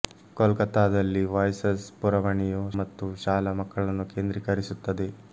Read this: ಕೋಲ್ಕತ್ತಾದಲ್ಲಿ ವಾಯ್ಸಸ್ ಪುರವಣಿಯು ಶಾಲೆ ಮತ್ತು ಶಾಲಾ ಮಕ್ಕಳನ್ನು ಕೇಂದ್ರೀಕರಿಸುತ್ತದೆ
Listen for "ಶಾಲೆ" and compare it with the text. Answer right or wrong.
wrong